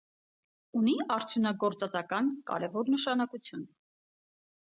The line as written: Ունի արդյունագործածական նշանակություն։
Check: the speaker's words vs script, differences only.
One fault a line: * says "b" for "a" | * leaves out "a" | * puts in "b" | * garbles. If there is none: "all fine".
* puts in "կարևոր"